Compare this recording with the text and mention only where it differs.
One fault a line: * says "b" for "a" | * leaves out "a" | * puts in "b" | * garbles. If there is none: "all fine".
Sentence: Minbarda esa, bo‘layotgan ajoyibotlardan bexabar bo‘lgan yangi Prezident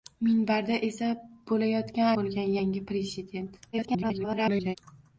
* leaves out "ajoyibotlardan bexabar"
* garbles